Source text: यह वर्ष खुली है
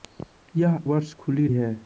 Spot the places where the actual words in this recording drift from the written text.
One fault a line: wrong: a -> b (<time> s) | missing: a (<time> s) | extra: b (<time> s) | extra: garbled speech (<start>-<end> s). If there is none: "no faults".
no faults